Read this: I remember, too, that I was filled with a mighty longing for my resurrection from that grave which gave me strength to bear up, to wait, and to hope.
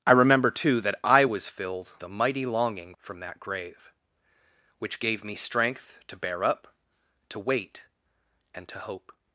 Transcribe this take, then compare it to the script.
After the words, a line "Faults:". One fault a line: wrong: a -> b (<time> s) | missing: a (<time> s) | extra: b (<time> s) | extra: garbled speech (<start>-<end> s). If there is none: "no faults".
I remember, too, that I was filled a mighty longing from that grave which gave me strength to bear up, to wait, and to hope.
Faults:
missing: with (1.9 s)
missing: for my resurrection (3.0 s)